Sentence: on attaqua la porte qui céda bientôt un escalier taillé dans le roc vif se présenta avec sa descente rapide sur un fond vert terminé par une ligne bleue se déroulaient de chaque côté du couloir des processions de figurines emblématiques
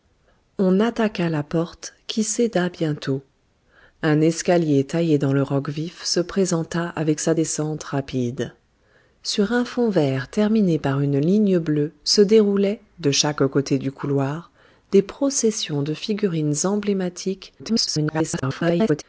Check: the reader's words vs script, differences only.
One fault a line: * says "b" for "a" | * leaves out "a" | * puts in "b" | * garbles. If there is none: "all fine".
* garbles